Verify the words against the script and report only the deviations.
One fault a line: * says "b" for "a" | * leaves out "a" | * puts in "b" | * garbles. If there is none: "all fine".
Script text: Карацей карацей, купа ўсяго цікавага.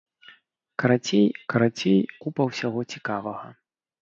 all fine